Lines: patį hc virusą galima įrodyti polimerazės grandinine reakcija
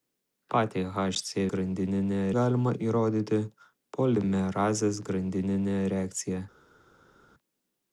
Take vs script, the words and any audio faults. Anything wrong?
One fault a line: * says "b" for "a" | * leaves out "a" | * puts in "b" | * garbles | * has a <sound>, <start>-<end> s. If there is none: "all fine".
* says "grandinine" for "virusą"